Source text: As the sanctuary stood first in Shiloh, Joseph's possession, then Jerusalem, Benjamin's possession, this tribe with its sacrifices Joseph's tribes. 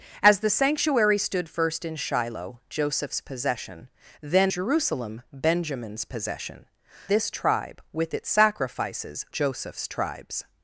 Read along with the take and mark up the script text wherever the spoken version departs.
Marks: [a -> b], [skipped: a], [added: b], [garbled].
As the sanctuary stood first in Shiloh, Joseph's possession, then Jerusalem, Benjamin's possession, this tribe with its sacrifices Joseph's tribes.